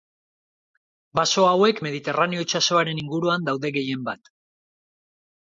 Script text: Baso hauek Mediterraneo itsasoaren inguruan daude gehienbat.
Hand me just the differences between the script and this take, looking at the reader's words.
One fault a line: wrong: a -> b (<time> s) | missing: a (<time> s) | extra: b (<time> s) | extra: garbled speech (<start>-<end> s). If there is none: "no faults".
no faults